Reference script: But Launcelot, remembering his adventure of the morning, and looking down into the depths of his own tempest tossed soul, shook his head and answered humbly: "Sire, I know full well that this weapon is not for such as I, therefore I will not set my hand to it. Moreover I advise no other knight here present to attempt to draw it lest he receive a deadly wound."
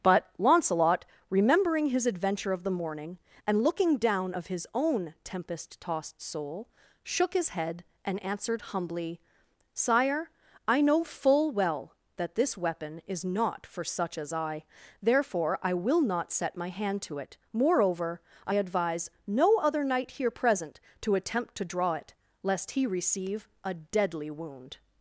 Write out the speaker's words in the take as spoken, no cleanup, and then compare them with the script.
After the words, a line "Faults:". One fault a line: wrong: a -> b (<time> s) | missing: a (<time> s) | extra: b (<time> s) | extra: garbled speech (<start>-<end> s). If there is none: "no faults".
But Launcelot, remembering his adventure of the morning, and looking down of his own tempest tossed soul, shook his head and answered humbly: "Sire, I know full well that this weapon is not for such as I, therefore I will not set my hand to it. Moreover I advise no other knight here present to attempt to draw it lest he receive a deadly wound."
Faults:
missing: into the depths (4.3 s)